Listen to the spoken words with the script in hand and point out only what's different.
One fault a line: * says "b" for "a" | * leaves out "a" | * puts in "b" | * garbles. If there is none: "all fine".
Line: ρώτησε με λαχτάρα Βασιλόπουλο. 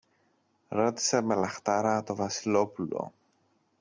* puts in "το"